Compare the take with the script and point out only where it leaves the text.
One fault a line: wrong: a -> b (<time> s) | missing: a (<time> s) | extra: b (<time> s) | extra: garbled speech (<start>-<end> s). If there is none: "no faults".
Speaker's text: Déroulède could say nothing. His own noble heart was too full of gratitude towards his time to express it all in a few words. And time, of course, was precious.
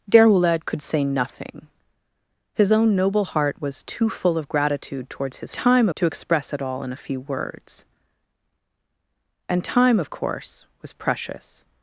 no faults